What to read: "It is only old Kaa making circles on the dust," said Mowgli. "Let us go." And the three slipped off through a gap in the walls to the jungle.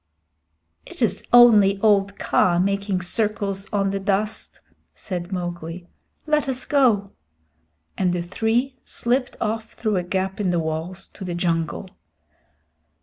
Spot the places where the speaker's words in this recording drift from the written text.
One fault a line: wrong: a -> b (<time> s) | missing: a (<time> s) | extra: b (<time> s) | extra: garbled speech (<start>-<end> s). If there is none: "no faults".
no faults